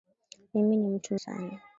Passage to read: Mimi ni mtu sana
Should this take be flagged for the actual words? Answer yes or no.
no